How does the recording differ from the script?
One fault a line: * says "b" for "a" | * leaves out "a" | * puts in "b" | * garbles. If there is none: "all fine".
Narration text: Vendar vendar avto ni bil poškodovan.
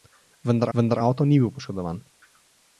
all fine